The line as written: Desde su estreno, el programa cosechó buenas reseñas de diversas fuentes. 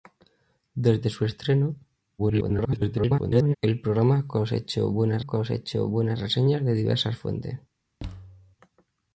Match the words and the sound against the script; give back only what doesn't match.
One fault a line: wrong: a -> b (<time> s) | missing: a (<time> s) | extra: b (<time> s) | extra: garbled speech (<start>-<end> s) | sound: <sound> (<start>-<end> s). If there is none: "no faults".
extra: garbled speech (2.2-3.6 s)
extra: cosechó buenas (5.2 s)
sound: thud (8.0-8.6 s)